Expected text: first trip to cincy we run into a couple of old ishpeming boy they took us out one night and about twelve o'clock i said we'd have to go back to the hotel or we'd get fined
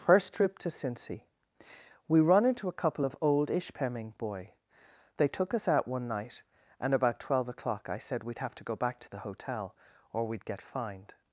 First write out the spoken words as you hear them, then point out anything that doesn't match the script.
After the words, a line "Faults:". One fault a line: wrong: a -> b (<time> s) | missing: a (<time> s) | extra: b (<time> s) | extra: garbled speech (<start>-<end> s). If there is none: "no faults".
first trip to cincy we run into a couple of old ishpeming boy they took us out one night and about twelve o'clock i said we'd have to go back to the hotel or we'd get fined
Faults:
no faults